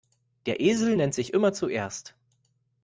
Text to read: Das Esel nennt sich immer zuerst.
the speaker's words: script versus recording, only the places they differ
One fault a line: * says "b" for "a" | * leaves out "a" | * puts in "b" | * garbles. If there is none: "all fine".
* says "Der" for "Das"